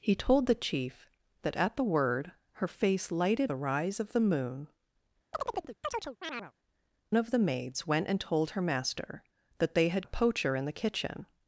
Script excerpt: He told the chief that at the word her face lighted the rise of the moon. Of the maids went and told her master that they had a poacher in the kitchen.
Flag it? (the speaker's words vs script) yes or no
no